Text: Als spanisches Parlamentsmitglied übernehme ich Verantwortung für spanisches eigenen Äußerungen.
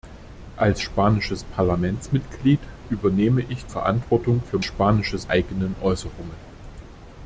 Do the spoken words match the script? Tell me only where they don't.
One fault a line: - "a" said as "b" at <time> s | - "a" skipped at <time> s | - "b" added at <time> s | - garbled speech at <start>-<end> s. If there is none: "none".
none